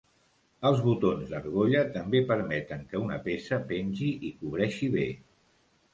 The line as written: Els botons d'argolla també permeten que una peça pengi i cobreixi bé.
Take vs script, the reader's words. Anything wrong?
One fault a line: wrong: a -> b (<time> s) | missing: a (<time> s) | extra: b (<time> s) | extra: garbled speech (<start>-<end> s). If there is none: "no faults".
no faults